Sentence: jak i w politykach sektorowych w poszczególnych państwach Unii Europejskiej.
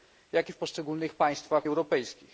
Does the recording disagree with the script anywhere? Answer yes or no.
yes